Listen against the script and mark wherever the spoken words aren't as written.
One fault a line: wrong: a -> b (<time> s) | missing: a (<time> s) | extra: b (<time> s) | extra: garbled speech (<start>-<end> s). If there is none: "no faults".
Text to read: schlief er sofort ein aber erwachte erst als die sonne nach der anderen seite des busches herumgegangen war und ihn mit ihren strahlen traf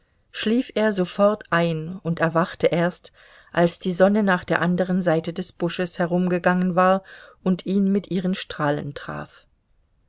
wrong: aber -> und (2.0 s)